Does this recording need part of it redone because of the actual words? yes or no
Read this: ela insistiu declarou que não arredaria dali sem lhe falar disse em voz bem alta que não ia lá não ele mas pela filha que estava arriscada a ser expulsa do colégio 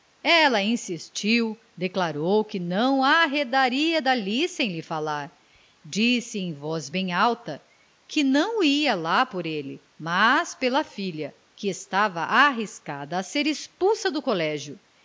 yes